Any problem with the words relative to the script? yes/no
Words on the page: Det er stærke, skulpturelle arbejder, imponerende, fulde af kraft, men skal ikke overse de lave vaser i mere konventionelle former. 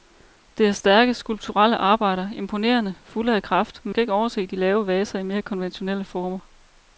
no